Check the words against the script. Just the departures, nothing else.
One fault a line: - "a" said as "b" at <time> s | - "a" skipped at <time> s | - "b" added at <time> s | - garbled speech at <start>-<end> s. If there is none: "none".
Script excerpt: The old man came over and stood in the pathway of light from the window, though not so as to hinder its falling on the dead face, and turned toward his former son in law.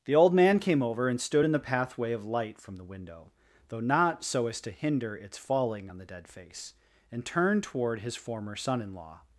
none